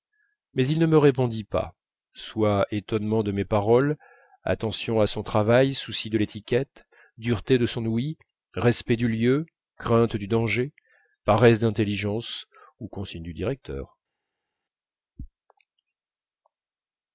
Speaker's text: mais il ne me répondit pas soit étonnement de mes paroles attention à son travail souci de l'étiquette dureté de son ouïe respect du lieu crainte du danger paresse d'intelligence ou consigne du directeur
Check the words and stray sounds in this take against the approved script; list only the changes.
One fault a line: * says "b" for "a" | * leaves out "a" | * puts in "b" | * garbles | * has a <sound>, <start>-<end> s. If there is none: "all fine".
all fine